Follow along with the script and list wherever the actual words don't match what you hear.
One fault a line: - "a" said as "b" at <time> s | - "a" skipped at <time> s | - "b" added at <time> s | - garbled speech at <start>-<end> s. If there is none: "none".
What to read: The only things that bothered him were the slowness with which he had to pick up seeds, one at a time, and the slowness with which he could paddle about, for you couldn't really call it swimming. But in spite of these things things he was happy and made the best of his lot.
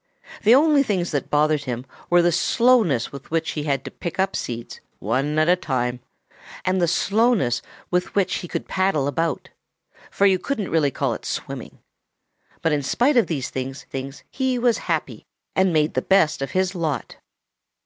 none